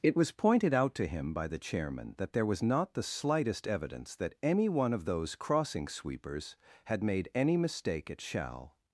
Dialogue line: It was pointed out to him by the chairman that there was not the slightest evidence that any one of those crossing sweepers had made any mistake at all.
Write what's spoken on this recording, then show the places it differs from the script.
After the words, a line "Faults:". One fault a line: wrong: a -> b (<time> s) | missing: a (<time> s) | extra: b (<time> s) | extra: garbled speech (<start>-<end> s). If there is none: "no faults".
It was pointed out to him by the chairman that there was not the slightest evidence that any one of those crossing sweepers had made any mistake at shall.
Faults:
wrong: all -> shall (8.2 s)